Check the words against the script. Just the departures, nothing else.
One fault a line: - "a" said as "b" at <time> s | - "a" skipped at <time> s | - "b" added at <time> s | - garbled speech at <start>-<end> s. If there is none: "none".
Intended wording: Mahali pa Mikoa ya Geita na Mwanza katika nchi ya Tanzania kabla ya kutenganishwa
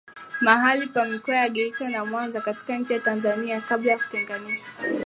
none